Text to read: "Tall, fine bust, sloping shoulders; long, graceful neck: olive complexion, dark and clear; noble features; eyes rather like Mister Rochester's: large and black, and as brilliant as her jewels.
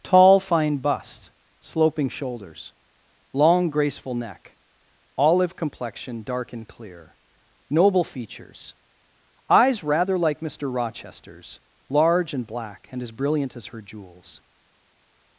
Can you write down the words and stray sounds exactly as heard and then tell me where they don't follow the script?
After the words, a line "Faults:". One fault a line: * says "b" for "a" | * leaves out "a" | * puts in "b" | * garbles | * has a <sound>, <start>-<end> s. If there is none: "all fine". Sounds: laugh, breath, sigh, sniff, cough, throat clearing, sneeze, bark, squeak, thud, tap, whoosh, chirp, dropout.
"Tall, fine bust, sloping shoulders; long, graceful neck: olive complexion, dark and clear; noble features; eyes rather like Mister Rochester's: large and black, and as brilliant as her jewels.
Faults:
all fine